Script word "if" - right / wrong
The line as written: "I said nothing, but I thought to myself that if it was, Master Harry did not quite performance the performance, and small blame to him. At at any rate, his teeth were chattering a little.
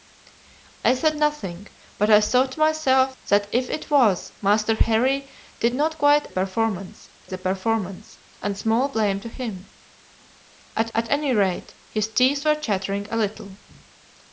right